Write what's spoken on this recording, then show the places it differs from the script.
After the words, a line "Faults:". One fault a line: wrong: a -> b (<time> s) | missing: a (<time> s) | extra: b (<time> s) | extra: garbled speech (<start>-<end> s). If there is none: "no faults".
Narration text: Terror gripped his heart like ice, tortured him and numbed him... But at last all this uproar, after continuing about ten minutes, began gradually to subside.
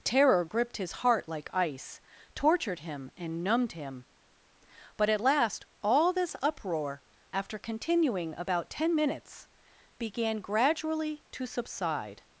Terror gripped his heart like ice, tortured him and numbed him... But at last all this uproar, after continuing about ten minutes, began gradually to subside.
Faults:
no faults